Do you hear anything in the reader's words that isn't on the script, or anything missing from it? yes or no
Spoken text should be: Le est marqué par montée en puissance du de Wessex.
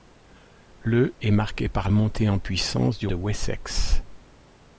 no